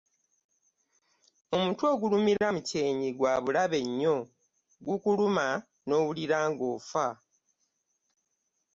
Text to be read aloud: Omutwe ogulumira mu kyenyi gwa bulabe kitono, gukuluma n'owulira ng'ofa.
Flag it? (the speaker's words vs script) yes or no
yes